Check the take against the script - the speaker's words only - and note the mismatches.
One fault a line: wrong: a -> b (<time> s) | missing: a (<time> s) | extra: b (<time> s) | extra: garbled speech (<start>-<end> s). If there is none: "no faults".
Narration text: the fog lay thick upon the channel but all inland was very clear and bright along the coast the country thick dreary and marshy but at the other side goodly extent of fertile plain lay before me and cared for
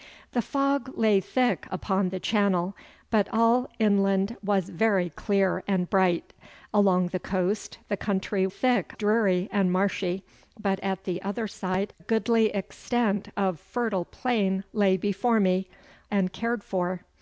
no faults